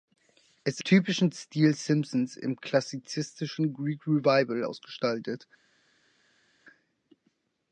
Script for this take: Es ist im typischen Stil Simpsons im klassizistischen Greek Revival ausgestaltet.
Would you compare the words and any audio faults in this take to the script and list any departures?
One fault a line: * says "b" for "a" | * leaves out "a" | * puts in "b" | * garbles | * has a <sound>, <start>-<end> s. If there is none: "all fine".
* leaves out "ist im"